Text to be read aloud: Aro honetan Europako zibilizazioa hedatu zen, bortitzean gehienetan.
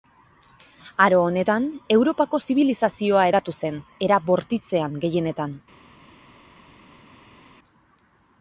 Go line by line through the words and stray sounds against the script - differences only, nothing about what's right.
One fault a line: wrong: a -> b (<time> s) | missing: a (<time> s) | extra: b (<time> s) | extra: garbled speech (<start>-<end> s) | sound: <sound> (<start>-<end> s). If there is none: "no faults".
extra: era (4.1 s)